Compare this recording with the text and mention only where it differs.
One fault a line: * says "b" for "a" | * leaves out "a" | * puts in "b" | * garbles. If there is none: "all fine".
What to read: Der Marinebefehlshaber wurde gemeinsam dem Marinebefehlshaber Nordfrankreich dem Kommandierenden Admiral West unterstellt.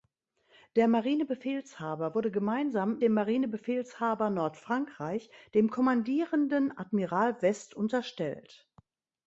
all fine